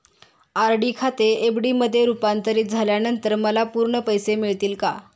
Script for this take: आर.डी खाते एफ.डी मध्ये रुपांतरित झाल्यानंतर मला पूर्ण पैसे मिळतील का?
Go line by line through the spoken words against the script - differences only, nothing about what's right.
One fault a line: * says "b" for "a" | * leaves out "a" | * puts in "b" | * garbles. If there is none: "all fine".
all fine